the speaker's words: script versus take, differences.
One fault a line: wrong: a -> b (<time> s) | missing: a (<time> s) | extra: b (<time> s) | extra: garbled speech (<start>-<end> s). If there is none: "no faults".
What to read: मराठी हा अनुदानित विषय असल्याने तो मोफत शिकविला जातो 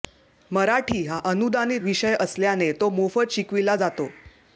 no faults